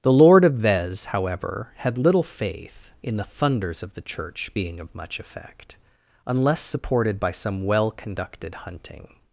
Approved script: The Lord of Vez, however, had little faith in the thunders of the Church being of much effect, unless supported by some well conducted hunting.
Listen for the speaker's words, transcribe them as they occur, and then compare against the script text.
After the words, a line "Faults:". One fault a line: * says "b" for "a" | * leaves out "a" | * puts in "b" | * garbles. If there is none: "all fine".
The Lord of Vez, however, had little faith in the thunders of the Church being of much effect, unless supported by some well conducted hunting.
Faults:
all fine